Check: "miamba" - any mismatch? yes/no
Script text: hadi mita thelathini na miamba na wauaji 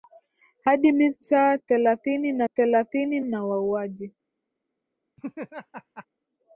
yes